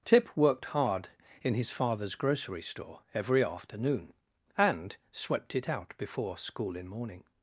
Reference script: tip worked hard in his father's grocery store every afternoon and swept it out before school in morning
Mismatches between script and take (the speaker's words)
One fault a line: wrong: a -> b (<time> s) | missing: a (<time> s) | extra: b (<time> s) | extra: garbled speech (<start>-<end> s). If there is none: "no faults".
no faults